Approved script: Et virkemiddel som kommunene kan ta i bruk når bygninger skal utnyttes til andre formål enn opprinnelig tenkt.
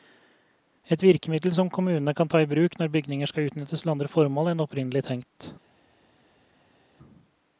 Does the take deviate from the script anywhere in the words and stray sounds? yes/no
no